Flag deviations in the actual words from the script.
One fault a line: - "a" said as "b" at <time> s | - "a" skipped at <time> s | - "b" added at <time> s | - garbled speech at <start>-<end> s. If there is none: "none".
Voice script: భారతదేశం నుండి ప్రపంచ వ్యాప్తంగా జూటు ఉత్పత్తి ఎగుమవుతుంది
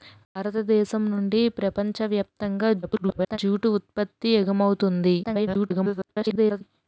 - garbled speech at 2.8-3.4 s
- garbled speech at 5.2-6.6 s